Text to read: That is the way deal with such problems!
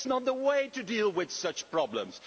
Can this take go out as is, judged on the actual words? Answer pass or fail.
fail